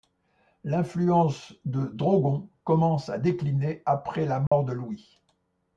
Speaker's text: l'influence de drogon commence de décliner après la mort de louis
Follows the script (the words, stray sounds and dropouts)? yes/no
no